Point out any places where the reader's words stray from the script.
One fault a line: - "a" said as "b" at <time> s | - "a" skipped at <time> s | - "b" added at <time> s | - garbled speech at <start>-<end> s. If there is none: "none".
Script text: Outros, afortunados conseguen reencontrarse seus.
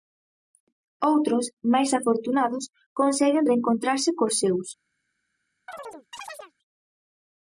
- "máis" added at 1.7 s
- "cos" added at 4.2 s